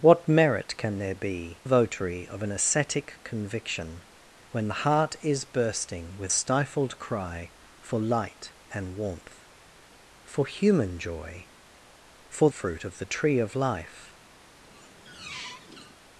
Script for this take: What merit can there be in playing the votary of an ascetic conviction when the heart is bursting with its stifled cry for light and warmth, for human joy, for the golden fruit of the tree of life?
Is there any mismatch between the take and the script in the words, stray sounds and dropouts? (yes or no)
yes